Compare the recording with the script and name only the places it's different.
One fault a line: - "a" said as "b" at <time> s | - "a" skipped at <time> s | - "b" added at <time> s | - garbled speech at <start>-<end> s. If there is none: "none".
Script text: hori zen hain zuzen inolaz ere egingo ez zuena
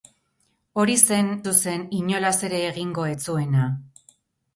- "hain" skipped at 1.3 s